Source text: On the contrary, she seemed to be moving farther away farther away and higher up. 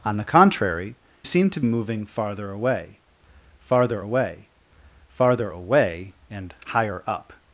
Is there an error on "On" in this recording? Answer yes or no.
no